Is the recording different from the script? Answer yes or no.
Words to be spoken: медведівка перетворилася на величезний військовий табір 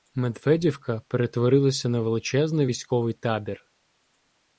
no